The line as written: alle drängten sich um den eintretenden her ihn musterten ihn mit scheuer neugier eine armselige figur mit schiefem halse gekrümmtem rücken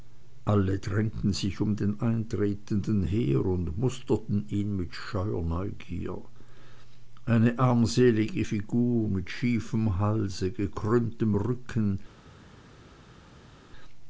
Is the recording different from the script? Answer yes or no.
yes